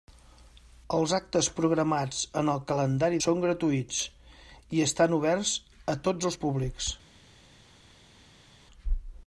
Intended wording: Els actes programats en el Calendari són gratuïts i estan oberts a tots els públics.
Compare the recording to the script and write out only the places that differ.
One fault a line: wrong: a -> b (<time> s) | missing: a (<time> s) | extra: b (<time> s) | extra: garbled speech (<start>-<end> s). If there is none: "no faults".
no faults